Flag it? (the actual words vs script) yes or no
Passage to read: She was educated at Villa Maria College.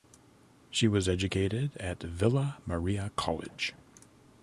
no